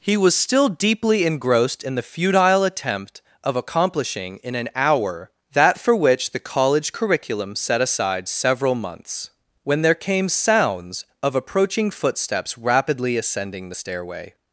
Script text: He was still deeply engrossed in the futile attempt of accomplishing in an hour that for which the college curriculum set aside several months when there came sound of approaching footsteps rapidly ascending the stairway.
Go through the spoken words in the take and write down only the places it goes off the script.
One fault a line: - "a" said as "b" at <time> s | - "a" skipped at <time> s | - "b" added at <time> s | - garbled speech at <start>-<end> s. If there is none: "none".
- "sound" said as "sounds" at 10.3 s